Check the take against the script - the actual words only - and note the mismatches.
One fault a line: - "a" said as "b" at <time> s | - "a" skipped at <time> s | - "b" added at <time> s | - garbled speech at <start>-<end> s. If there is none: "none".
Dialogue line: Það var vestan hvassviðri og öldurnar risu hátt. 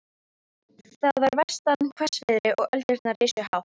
none